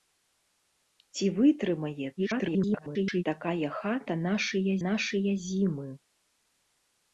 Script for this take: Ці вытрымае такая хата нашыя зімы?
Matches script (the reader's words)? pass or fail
fail